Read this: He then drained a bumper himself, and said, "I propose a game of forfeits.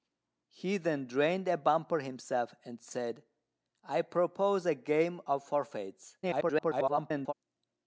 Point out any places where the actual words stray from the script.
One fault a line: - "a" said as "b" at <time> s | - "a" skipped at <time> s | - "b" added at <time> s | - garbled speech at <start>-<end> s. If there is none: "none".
- garbled speech at 6.2-7.3 s